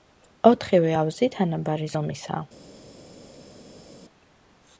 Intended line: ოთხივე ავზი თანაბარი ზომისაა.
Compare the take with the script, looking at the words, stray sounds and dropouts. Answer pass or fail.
pass